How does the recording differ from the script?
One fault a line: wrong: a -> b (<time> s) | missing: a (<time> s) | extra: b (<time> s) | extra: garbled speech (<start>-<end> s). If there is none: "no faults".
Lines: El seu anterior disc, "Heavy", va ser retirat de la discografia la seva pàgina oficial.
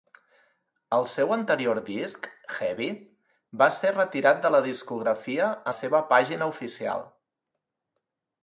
no faults